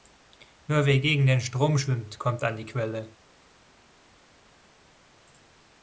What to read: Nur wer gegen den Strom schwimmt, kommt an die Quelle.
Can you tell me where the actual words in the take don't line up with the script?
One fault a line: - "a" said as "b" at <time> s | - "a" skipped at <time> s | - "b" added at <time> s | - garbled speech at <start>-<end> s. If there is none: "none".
none